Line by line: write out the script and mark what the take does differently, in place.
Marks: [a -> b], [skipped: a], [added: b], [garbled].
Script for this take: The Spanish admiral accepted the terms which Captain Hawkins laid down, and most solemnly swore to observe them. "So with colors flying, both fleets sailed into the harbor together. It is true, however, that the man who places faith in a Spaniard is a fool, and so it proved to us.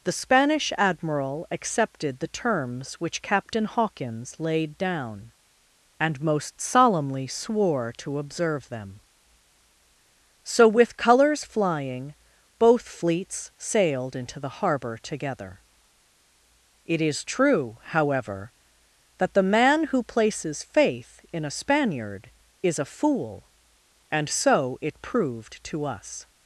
The Spanish admiral accepted the terms which Captain Hawkins laid down, and most solemnly swore to observe them. "So with colors flying, both fleets sailed into the harbor together. It is true, however, that the man who places faith in a Spaniard is a fool, and so it proved to us.